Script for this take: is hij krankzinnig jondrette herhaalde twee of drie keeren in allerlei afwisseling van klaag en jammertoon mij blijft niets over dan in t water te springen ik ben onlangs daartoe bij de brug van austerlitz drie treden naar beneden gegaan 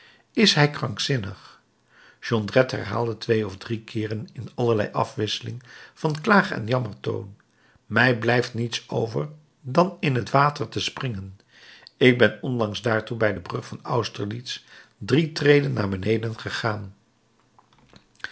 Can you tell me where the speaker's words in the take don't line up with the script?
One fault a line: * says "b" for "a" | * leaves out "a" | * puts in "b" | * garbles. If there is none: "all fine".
all fine